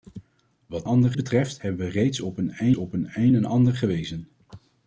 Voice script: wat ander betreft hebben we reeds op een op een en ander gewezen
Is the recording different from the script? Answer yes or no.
no